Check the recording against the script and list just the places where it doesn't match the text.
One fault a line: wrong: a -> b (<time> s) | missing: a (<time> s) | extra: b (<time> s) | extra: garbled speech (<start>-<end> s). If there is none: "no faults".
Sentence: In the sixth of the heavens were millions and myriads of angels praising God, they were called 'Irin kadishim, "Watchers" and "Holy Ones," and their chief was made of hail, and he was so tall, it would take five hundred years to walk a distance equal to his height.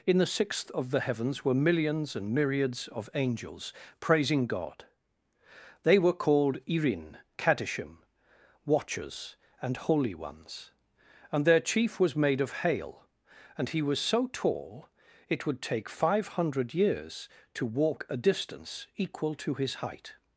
no faults